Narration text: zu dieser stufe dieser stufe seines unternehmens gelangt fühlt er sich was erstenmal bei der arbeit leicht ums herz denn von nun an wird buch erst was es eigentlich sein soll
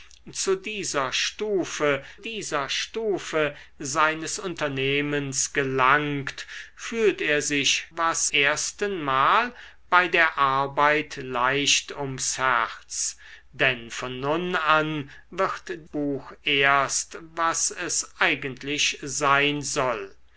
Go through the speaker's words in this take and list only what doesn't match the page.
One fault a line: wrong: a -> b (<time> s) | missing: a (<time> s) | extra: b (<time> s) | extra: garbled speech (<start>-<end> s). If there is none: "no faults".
no faults